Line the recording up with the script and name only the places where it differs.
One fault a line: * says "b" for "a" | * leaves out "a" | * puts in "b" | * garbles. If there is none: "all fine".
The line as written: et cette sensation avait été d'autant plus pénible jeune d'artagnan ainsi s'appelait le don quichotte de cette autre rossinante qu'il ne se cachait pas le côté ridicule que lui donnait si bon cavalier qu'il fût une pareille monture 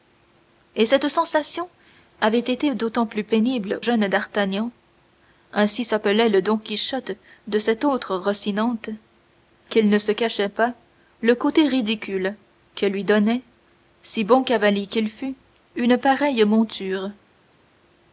all fine